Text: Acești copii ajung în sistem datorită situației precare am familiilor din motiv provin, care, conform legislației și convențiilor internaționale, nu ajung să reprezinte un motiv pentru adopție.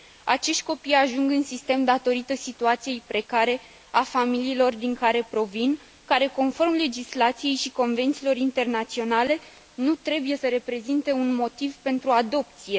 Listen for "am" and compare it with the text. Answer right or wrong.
wrong